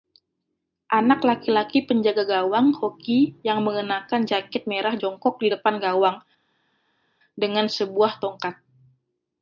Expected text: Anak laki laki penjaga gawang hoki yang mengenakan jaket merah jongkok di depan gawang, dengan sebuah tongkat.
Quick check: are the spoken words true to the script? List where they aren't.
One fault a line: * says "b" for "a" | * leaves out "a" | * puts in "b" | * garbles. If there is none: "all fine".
all fine